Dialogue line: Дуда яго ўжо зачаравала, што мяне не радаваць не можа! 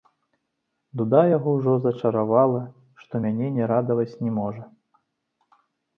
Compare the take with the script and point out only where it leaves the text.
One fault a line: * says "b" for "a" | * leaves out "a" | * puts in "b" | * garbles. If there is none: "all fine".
all fine